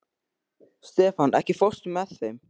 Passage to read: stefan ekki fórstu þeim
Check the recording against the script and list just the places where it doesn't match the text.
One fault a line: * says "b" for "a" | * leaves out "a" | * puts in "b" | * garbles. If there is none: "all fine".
* puts in "með"